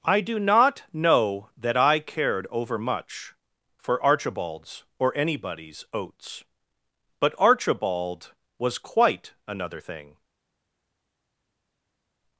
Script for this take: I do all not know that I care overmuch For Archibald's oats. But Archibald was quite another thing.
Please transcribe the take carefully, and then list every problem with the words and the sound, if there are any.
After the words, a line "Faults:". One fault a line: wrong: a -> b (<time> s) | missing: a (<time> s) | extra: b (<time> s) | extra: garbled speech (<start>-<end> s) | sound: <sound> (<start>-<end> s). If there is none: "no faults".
I do not know that I cared overmuch For Archibald's or anybody's oats. But Archibald was quite another thing.
Faults:
missing: all (0.4 s)
wrong: care -> cared (2.0 s)
extra: or anybody's (5.0 s)